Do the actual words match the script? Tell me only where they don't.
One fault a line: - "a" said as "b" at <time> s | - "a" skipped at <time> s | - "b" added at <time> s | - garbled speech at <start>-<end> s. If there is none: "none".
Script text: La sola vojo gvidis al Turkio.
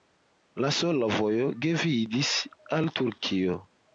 none